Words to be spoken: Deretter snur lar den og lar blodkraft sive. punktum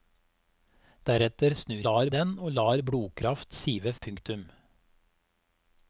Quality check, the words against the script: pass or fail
pass